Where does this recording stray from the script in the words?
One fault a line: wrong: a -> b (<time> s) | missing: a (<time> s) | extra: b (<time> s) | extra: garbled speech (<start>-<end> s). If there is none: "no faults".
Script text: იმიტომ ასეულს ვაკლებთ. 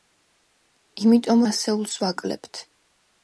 no faults